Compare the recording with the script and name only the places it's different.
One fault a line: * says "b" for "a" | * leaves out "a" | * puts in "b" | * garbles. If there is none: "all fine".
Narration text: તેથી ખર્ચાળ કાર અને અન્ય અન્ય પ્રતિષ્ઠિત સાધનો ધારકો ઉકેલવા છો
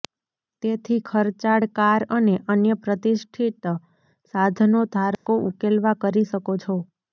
* leaves out "અન્ય"
* puts in "કરી શકો"